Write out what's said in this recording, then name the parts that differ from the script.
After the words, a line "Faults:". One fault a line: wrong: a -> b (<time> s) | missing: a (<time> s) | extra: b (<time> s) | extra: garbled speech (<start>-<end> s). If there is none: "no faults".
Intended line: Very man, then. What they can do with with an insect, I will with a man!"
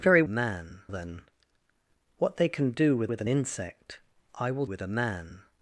Very man, then. What they can do with with an insect, I will with a man!"
Faults:
no faults